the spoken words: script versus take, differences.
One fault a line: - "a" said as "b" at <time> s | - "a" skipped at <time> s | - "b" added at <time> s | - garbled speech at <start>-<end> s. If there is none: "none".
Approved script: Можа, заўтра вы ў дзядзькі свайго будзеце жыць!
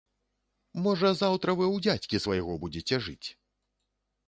none